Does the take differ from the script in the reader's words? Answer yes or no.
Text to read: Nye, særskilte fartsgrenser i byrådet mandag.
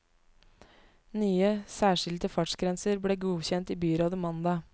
yes